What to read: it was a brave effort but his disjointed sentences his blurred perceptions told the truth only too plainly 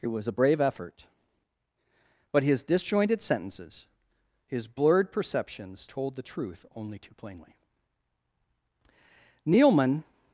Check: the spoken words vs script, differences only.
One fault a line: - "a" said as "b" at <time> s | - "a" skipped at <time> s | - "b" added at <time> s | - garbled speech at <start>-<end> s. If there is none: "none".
- "nealman" added at 9.5 s